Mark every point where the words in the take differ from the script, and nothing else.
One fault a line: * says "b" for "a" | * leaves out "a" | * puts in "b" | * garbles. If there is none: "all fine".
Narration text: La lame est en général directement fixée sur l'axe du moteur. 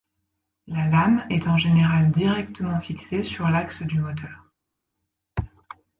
all fine